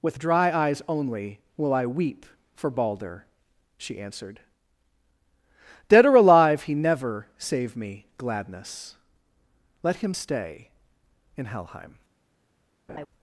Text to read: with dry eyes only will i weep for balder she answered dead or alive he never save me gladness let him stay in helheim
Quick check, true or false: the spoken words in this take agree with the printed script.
true